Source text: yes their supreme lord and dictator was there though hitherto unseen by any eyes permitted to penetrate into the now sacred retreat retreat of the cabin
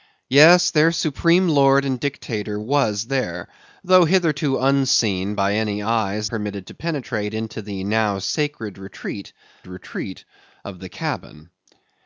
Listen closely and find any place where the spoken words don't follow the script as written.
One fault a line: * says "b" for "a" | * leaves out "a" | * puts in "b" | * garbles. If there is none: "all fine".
all fine